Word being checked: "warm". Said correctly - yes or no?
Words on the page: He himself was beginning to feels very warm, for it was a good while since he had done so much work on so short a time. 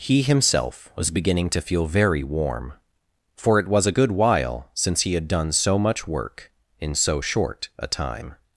yes